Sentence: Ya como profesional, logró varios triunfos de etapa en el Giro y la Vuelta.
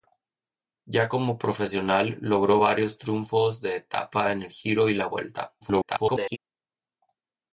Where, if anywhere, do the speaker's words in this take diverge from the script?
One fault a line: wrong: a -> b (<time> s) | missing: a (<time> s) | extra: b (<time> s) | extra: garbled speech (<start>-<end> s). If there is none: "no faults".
extra: garbled speech (5.6-6.4 s)